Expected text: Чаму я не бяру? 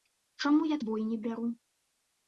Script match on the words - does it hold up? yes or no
no